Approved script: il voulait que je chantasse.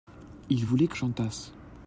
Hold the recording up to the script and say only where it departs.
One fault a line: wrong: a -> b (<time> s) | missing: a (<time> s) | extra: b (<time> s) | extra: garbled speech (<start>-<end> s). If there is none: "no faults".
missing: je (1.0 s)